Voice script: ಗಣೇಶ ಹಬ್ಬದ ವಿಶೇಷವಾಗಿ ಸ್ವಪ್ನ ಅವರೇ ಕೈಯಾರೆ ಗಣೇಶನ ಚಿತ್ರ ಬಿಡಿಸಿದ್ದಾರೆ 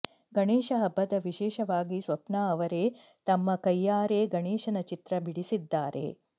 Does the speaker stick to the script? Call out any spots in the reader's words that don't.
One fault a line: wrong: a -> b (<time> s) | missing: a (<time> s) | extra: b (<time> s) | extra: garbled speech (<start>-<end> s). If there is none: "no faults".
extra: ತಮ್ಮ (3.3 s)